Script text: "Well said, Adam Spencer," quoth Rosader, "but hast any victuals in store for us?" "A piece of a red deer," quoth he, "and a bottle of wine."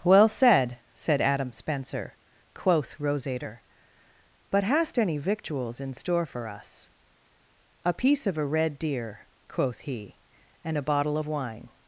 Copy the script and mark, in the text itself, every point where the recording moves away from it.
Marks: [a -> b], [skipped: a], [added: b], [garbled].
"Well said, [added: said] Adam Spencer," quoth Rosader, "but hast any victuals in store for us?" "A piece of a red deer," quoth he, "and a bottle of wine."